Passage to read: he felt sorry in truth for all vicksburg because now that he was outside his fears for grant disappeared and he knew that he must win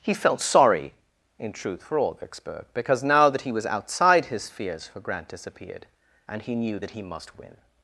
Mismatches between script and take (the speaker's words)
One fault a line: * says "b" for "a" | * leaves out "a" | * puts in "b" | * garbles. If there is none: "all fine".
all fine